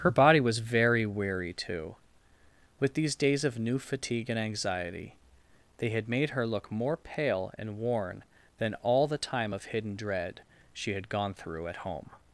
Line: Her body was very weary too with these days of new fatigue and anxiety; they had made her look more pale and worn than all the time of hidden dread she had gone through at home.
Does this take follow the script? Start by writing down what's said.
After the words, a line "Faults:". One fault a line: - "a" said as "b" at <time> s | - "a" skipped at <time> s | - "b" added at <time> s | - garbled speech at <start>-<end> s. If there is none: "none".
Her body was very weary too with these days of new fatigue and anxiety; they had made her look more pale and worn than all the time of hidden dread she had gone through at home.
Faults:
none